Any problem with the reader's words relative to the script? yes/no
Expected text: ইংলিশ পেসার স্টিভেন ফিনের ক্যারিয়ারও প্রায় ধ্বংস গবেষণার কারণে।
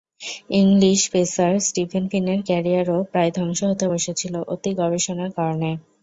yes